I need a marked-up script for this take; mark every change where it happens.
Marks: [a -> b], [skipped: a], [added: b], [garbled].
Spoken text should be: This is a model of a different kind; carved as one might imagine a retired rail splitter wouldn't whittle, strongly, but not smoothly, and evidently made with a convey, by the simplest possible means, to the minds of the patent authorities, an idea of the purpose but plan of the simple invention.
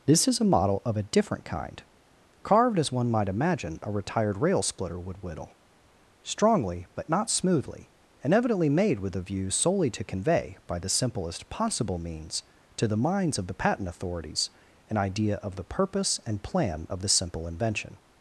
This is a model of a different kind; carved as one might imagine a retired rail splitter [wouldn't -> would] whittle, strongly, but not smoothly, and evidently made with a [added: view solely to] convey, by the simplest possible means, to the minds of the patent authorities, an idea of the purpose [but -> and] plan of the simple invention.